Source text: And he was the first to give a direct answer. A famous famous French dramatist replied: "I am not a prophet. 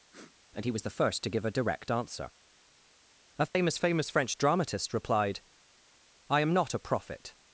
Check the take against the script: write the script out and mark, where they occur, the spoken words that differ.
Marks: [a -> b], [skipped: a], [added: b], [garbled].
And he was the first to give a direct answer. A famous famous French dramatist replied: "I am not a prophet.